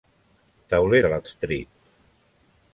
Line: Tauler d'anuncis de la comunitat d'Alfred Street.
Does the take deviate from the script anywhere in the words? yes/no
yes